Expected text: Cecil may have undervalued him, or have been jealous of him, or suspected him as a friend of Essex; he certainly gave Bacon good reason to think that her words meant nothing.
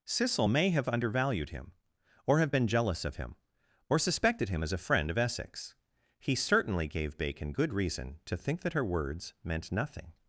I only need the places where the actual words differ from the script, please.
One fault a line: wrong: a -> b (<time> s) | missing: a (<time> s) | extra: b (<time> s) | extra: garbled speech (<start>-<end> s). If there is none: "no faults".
no faults